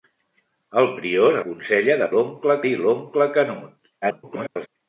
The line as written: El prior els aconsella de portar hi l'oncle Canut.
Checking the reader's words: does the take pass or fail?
fail